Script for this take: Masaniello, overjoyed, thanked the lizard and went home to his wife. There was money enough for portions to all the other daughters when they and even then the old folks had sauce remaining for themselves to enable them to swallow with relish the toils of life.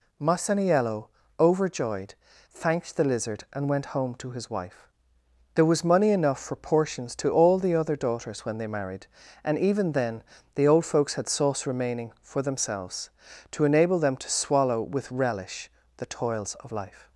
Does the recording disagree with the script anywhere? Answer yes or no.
yes